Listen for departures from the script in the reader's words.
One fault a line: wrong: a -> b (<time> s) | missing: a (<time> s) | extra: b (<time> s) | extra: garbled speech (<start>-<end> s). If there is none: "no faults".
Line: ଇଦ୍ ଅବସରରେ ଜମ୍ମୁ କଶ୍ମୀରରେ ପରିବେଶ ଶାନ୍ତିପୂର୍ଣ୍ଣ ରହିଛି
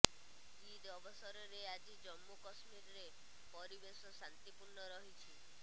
extra: ଆଜି (1.7 s)